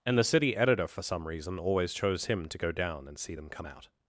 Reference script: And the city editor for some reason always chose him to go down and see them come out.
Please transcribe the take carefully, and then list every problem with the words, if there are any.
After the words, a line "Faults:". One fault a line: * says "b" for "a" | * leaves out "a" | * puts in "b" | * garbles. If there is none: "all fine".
And the city editor for some reason always chose him to go down and see them come out.
Faults:
all fine